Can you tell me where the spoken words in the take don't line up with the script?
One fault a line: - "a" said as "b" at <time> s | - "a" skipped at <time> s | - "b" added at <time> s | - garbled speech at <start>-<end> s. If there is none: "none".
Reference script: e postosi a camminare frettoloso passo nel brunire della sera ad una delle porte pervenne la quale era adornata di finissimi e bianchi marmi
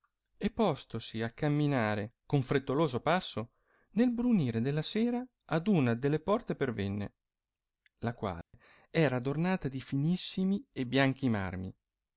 - "con" added at 2.3 s